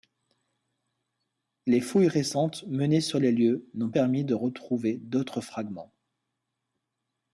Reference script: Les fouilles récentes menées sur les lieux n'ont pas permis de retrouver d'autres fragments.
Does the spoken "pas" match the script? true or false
false